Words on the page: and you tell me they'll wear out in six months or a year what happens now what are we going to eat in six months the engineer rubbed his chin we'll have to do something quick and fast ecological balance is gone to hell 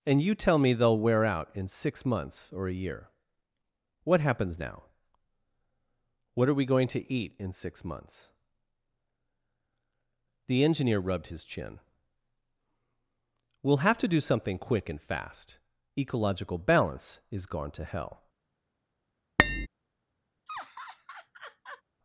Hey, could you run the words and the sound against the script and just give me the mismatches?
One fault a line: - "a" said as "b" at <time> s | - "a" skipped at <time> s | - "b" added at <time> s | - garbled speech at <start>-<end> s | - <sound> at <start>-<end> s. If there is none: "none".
- tap at 19.4-19.7 s
- laugh at 20.5-21.8 s